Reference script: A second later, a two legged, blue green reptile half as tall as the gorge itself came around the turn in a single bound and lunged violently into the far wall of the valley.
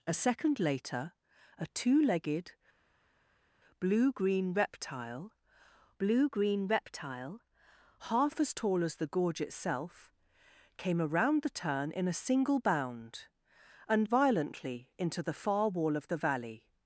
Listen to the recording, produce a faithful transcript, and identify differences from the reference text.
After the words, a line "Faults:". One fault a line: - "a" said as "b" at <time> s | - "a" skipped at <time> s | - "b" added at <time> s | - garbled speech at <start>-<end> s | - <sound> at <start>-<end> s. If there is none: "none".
A second later, a two legged, blue green reptile blue green reptile half as tall as the gorge itself came around the turn in a single bound and violently into the far wall of the valley.
Faults:
- "blue green reptile" added at 6.0 s
- "lunged" skipped at 14.1 s